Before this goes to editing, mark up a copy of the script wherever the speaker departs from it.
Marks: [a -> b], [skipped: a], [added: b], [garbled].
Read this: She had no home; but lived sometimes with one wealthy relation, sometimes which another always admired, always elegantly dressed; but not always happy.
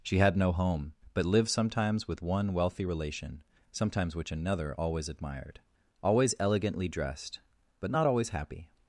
She had no home; but lived sometimes with one wealthy relation, sometimes which another always admired, always elegantly dressed; but not always happy.